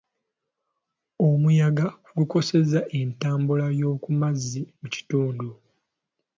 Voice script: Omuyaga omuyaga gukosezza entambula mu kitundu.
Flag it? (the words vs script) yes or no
yes